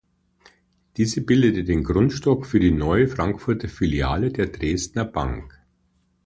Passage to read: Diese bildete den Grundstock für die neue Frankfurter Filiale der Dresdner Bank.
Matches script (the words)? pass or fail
pass